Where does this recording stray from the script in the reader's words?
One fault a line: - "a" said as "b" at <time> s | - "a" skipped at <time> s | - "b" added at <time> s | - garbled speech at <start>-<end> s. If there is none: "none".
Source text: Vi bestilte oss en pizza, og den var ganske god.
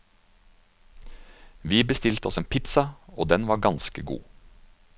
none